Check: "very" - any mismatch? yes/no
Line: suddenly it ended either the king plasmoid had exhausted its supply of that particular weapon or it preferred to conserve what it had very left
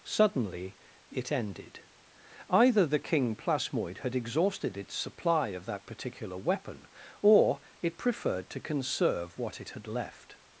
yes